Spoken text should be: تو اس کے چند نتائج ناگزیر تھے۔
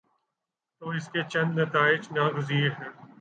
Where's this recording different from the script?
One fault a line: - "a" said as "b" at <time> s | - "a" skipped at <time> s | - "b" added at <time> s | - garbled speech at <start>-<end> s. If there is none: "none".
- "تھے" said as "ہیں" at 2.7 s